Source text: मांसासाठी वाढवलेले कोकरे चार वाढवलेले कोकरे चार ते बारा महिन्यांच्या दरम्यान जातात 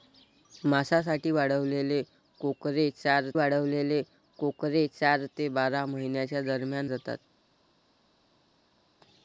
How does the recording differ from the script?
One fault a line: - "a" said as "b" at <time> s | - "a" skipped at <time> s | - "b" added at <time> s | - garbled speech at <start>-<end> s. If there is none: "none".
none